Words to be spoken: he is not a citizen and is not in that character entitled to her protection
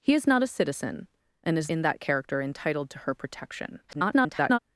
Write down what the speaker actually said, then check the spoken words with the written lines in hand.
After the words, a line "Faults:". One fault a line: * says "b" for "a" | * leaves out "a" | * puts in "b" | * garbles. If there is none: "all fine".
he is not a citizen and is in that character entitled to her protection [garbled]
Faults:
* leaves out "not"
* garbles